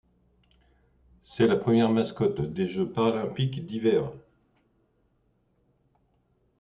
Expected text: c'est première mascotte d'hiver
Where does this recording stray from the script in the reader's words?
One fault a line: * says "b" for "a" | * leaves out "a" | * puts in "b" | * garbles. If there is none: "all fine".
* puts in "la"
* puts in "des jeux paralympiques"